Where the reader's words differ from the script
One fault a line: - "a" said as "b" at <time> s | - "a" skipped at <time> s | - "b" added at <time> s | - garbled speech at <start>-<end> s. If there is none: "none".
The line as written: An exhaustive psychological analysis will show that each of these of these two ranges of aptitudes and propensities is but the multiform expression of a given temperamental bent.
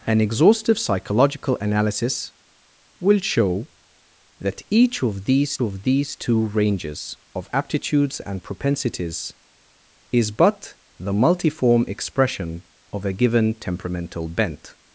none